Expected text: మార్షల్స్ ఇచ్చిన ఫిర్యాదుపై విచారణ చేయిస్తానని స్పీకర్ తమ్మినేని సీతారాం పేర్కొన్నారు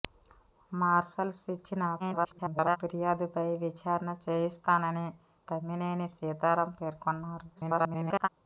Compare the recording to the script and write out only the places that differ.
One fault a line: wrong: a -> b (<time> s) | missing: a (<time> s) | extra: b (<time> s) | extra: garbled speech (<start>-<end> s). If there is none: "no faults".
extra: garbled speech (2.0-2.8 s)
missing: స్పీకర్ (5.1 s)
extra: garbled speech (7.5-8.3 s)